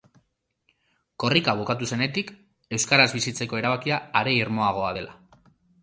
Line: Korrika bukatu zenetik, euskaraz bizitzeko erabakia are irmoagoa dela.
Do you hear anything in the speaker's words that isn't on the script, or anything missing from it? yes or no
no